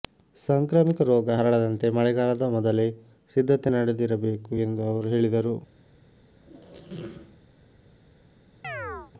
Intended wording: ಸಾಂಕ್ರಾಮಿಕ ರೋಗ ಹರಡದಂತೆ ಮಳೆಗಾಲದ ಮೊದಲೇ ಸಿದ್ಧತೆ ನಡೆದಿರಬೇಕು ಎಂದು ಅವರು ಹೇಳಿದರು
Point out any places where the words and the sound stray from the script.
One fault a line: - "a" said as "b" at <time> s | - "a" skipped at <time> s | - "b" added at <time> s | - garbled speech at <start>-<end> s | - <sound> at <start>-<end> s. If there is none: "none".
- squeak at 6.4-7.4 s
- chirp at 8.6-9.1 s